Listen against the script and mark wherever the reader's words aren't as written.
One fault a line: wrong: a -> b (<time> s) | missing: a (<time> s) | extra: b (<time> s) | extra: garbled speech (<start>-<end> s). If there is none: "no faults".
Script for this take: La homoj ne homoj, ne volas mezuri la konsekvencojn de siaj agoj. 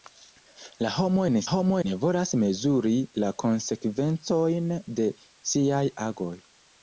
no faults